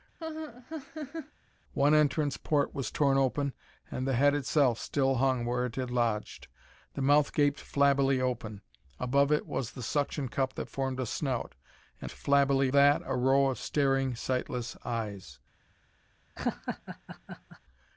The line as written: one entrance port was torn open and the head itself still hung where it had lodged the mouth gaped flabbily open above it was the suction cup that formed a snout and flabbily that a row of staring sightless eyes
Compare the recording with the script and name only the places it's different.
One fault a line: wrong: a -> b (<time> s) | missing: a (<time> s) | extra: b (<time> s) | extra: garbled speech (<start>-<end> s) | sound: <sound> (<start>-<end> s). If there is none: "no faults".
sound: laugh (0.2-1.3 s)
sound: laugh (16.4-17.6 s)